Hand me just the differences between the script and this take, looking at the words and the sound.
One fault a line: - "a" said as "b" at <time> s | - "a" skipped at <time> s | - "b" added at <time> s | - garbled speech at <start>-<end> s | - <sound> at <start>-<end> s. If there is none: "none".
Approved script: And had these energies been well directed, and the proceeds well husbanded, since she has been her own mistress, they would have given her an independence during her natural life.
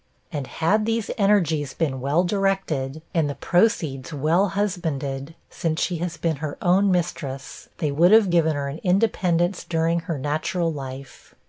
none